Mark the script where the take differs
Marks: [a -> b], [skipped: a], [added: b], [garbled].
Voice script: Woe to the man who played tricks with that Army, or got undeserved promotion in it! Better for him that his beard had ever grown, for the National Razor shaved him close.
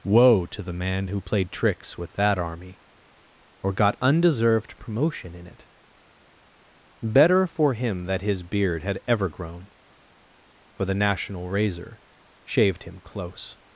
Woe to the man who played tricks with that Army, or got undeserved promotion in it! Better for him that his beard had ever grown, for the National Razor shaved him close.